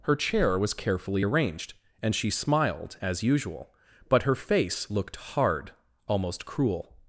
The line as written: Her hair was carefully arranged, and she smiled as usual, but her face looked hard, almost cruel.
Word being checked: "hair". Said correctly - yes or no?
no